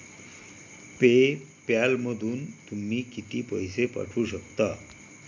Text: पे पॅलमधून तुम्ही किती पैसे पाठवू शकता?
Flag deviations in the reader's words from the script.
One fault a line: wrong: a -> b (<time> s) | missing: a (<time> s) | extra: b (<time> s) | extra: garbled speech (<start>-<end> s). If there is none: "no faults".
no faults